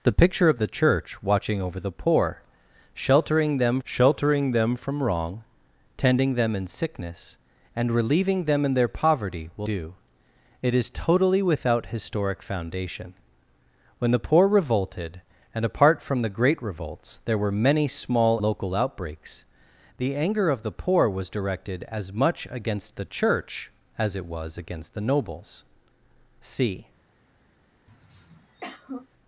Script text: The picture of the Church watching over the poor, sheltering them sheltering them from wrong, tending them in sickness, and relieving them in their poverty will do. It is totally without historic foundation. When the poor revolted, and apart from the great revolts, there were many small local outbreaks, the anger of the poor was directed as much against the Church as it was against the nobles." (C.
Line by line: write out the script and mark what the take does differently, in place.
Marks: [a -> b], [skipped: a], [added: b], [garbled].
The picture of the Church watching over the poor, sheltering them sheltering them from wrong, tending them in sickness, and relieving them in their poverty will do. It is totally without historic foundation. When the poor revolted, and apart from the great revolts, there were many small local outbreaks, the anger of the poor was directed as much against the Church as it was against the nobles." (C.